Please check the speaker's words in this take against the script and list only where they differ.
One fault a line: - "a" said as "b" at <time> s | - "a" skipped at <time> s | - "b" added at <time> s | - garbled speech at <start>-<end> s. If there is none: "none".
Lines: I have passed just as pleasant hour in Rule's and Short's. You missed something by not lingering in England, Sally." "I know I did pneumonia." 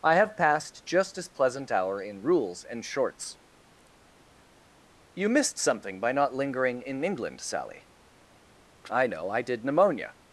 none